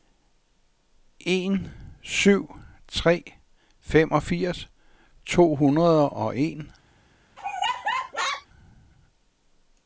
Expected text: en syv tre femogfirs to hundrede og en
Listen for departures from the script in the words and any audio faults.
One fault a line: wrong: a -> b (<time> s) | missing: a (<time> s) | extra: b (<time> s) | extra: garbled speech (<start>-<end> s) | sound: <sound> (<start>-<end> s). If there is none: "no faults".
sound: laugh (7.4-8.5 s)